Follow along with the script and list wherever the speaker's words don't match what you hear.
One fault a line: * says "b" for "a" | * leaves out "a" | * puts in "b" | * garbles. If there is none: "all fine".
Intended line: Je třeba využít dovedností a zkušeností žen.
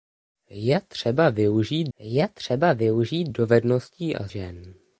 * puts in "je třeba využít"
* leaves out "zkušeností"